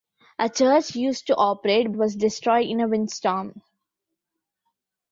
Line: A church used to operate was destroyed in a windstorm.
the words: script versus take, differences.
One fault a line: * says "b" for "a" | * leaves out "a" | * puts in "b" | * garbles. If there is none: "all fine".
all fine